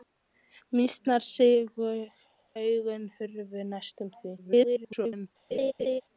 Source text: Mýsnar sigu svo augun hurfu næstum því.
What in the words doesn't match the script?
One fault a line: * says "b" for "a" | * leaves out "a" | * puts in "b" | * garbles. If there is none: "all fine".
* leaves out "svo"
* garbles